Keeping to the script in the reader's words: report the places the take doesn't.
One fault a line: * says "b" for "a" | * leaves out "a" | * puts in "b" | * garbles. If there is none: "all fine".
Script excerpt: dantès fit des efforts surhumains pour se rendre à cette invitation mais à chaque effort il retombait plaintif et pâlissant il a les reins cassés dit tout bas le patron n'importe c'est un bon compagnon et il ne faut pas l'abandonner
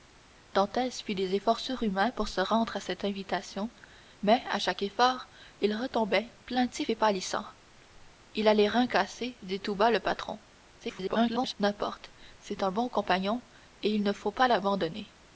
* garbles